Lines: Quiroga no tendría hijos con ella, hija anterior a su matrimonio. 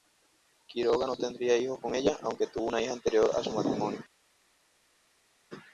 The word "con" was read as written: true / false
true